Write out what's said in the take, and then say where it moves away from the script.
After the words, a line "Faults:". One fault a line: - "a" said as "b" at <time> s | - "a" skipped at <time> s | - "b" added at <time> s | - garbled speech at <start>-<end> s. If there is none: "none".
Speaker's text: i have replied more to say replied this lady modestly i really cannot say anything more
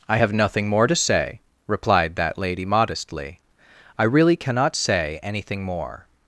i have nothing more to say replied that lady modestly i really cannot say anything more
Faults:
- "replied" said as "nothing" at 0.3 s
- "this" said as "that" at 2.1 s